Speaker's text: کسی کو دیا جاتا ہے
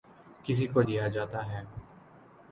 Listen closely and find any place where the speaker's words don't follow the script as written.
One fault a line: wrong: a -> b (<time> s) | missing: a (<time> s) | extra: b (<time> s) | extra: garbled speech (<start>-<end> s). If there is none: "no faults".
no faults